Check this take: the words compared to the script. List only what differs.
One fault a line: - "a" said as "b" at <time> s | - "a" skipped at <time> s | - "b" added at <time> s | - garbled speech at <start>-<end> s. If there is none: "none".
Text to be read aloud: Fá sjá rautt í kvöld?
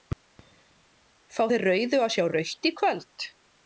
- "þeir rauðu að" added at 1.5 s